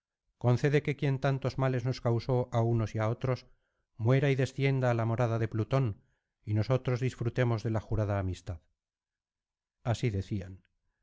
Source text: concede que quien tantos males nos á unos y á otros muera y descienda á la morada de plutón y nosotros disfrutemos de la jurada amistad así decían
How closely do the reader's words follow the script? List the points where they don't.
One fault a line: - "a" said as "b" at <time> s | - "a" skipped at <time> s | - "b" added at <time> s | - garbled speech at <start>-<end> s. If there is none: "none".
- "causó" added at 2.1 s